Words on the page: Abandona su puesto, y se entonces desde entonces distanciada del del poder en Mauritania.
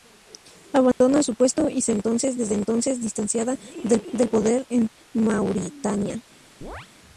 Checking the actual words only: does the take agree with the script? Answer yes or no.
yes